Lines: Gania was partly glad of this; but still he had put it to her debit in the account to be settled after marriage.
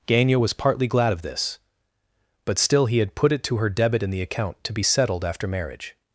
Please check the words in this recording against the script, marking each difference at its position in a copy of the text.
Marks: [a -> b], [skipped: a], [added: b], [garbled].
Gania was partly glad of this; but still he had put it to her debit in the account to be settled after marriage.